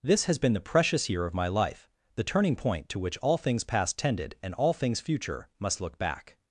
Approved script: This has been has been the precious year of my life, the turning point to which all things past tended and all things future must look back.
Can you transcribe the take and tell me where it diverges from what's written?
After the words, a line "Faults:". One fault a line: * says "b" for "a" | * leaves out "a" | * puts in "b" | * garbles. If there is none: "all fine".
This has been the precious year of my life, the turning point to which all things past tended and all things future must look back.
Faults:
* leaves out "has been"